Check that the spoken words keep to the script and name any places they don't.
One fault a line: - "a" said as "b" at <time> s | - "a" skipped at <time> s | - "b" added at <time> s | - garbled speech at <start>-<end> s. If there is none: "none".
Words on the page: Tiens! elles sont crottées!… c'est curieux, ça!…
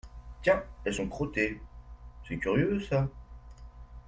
none